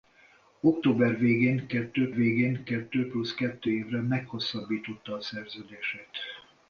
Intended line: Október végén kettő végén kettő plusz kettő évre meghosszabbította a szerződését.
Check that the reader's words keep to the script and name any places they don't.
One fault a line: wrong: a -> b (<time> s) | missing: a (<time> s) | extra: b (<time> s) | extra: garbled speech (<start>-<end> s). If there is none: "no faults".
no faults